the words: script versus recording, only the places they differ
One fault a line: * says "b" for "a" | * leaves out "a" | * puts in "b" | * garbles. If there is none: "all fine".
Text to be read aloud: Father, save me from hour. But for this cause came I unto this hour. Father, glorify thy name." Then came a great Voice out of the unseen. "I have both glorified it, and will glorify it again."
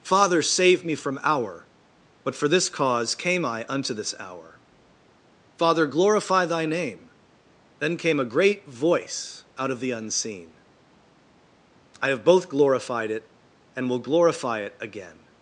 all fine